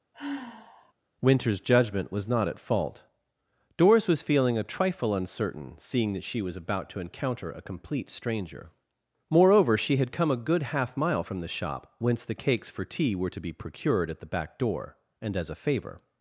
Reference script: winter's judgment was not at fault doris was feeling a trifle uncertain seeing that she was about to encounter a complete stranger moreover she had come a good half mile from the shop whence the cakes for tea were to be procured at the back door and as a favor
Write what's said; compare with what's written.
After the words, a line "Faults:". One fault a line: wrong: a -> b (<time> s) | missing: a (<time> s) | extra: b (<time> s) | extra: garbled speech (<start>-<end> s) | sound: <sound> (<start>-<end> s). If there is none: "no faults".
winter's judgment was not at fault doris was feeling a trifle uncertain seeing that she was about to encounter a complete stranger moreover she had come a good half mile from the shop whence the cakes for tea were to be procured at the back door and as a favor
Faults:
sound: sigh (0.1-0.9 s)